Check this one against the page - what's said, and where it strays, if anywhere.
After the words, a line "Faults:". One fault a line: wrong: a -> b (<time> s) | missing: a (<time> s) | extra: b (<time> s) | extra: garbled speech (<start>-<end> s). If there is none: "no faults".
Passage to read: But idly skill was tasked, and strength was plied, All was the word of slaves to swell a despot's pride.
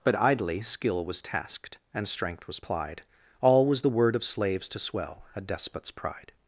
But idly skill was tasked, and strength was plied, All was the word of slaves to swell a despot's pride.
Faults:
no faults